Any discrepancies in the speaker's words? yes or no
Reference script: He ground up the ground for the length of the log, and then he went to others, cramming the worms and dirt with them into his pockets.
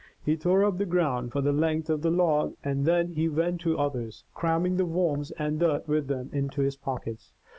yes